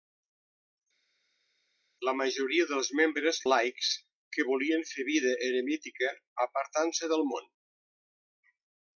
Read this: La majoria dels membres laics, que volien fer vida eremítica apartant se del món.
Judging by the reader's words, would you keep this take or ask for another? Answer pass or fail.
pass